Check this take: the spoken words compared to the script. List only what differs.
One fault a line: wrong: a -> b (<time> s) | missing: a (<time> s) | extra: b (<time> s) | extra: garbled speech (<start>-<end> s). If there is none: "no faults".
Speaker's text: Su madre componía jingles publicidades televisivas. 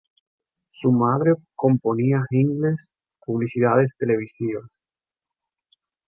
no faults